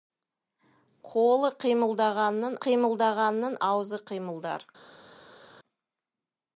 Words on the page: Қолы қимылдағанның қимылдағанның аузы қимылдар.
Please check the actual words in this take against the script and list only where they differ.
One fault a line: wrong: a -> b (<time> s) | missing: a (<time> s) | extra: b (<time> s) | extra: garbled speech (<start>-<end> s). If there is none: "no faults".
no faults